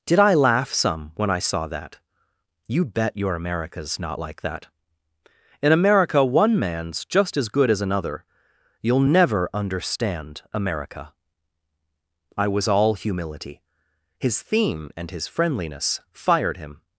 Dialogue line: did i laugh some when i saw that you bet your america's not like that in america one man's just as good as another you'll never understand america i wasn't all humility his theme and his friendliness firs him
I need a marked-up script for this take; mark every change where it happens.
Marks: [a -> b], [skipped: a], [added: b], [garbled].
did i laugh some when i saw that you bet your america's not like that in america one man's just as good as another you'll never understand america i [wasn't -> was] all humility his theme and his friendliness [firs -> fired] him